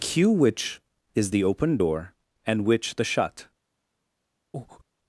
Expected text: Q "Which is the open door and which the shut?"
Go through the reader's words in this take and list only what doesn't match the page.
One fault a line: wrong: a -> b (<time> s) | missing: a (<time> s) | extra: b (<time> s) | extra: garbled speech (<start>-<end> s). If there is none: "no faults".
no faults